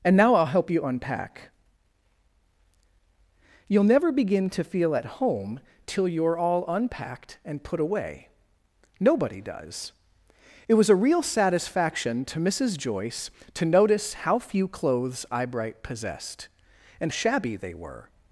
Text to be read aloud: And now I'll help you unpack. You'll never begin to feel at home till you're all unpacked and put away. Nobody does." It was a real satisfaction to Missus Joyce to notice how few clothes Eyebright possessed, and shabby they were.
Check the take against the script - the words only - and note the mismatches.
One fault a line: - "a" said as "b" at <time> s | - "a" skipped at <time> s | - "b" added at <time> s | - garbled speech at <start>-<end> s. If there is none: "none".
none